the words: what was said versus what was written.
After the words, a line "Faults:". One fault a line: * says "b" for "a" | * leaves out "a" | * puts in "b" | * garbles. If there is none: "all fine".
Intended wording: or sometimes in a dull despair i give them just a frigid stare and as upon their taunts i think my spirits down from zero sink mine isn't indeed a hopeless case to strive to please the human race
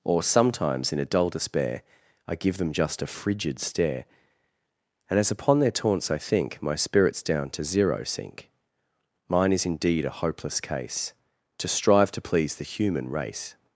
or sometimes in a dull despair i give them just a frigid stare and as upon their taunts i think my spirits down to zero sink mine is indeed a hopeless case to strive to please the human race
Faults:
* says "to" for "from"
* says "is" for "isn't"